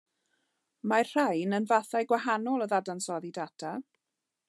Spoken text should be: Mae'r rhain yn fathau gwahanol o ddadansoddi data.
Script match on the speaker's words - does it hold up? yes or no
yes